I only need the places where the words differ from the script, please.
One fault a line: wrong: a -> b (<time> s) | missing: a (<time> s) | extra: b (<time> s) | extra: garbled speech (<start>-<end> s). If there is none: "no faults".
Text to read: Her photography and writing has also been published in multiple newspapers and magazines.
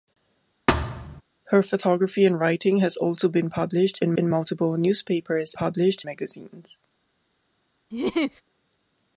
extra: in (4.2 s)
wrong: and -> published (5.5 s)